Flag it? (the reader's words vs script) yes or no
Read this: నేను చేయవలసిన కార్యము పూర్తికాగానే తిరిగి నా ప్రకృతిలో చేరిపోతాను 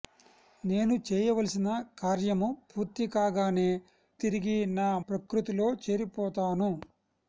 no